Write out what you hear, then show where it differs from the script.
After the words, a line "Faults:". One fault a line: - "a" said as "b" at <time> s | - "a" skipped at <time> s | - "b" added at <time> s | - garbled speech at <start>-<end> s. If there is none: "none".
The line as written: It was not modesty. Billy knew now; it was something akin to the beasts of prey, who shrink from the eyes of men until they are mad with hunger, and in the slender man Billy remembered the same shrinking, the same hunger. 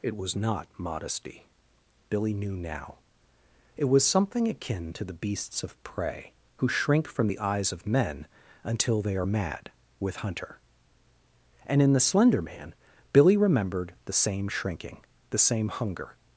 It was not modesty. Billy knew now; it was something akin to the beasts of prey, who shrink from the eyes of men until they are mad with hunter, and in the slender man Billy remembered the same shrinking, the same hunger.
Faults:
- "hunger" said as "hunter" at 10.2 s